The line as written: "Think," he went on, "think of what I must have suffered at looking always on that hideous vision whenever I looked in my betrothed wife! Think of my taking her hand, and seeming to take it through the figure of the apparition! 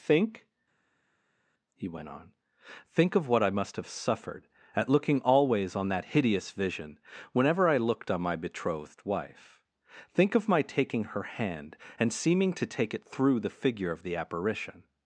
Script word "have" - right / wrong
right